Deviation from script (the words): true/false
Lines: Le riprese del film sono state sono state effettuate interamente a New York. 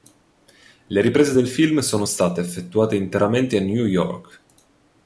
true